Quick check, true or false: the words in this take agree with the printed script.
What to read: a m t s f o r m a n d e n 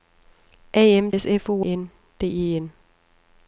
false